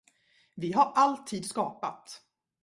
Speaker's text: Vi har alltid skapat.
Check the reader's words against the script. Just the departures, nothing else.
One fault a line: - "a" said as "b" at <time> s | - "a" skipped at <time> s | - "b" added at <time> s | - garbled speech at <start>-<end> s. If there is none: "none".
none